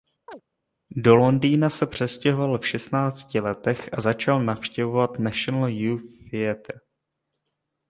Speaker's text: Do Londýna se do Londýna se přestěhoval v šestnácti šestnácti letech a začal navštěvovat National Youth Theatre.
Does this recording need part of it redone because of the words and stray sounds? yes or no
yes